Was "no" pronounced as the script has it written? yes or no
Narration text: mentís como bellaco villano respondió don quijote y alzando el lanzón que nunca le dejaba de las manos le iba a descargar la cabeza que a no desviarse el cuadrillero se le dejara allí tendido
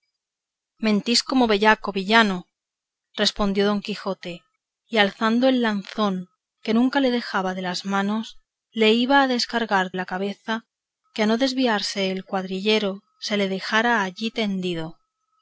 yes